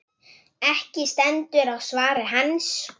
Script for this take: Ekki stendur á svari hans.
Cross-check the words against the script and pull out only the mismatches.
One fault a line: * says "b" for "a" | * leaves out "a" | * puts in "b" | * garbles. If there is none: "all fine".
all fine